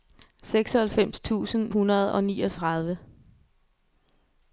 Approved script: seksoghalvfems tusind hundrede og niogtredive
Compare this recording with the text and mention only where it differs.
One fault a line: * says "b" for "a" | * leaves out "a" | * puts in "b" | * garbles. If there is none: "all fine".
all fine